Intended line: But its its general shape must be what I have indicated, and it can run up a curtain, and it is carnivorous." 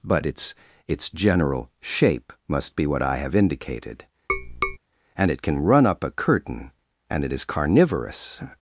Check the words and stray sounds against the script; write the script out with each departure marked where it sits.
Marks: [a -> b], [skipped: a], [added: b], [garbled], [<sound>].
But its its general shape must be what I have indicated, [tap] and it can run up a curtain, and it is carnivorous."